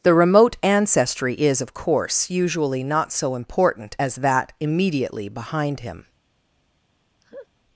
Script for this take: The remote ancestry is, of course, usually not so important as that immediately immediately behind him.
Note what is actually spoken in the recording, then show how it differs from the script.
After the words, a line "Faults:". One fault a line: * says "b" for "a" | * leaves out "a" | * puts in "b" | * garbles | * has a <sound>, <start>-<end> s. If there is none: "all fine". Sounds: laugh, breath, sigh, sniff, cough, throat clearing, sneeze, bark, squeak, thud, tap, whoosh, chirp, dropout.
The remote ancestry is, of course, usually not so important as that immediately behind him.
Faults:
* leaves out "immediately"
* has a laugh, 7.2-7.5 s